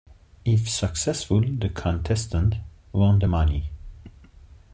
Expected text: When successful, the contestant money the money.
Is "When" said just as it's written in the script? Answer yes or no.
no